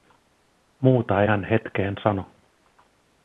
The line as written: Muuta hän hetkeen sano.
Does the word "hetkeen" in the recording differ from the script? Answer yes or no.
no